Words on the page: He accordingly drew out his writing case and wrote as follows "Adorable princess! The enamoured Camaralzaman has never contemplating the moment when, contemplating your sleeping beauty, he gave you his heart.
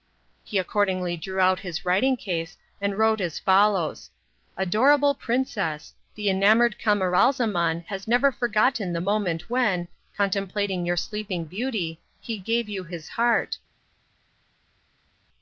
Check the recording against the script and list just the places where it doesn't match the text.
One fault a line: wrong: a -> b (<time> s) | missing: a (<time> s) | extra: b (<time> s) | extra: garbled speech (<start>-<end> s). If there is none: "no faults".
wrong: contemplating -> forgotten (8.3 s)